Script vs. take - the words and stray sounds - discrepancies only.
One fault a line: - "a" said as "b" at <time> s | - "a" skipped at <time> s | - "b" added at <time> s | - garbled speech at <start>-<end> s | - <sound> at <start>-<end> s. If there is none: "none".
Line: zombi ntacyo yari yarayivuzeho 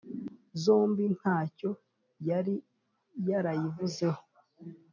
none